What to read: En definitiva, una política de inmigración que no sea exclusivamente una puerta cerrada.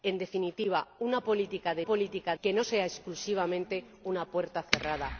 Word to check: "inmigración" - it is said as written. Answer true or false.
false